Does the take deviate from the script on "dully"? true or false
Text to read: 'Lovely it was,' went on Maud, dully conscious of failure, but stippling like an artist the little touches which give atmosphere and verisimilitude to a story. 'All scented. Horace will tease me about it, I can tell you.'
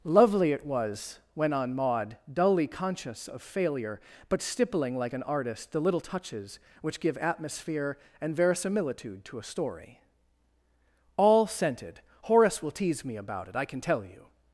false